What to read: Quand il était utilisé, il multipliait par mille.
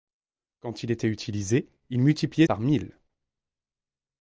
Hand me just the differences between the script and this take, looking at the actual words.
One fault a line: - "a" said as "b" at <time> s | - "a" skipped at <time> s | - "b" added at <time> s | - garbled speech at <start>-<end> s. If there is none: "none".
none